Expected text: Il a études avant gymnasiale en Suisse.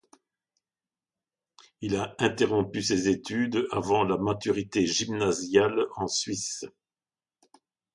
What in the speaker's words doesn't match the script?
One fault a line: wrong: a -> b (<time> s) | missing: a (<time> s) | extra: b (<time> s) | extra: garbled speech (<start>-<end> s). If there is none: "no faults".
extra: interrompu ses (2.2 s)
extra: la Maturité (4.0 s)